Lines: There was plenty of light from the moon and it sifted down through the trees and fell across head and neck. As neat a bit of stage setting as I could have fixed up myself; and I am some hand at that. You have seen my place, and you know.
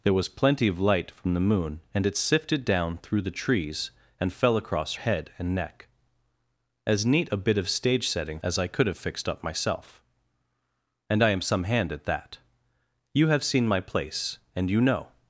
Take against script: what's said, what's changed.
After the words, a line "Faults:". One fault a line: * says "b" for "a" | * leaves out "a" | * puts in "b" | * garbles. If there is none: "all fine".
There was plenty of light from the moon and it sifted down through the trees and fell across head and neck. As neat a bit of stage setting as I could have fixed up myself; and I am some hand at that. You have seen my place, and you know.
Faults:
all fine